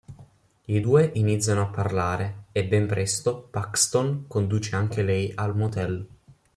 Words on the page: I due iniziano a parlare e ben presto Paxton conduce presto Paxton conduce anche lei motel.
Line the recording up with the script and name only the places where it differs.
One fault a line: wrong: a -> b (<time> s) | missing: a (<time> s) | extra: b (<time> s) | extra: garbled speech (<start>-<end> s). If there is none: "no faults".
missing: presto Paxton conduce (4.8 s)
extra: al (5.3 s)